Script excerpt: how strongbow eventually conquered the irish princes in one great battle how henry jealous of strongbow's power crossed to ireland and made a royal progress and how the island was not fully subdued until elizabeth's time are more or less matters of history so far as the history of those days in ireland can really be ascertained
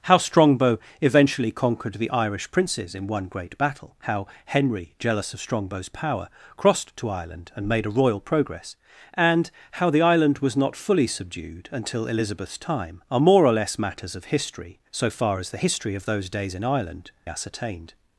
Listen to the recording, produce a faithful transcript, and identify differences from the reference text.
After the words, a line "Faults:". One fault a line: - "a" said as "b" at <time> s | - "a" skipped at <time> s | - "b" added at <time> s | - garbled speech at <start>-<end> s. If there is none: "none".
how strongbow eventually conquered the irish princes in one great battle how henry jealous of strongbow's power crossed to ireland and made a royal progress and how the island was not fully subdued until elizabeth's time are more or less matters of history so far as the history of those days in ireland ascertained
Faults:
- "can really be" skipped at 17.1 s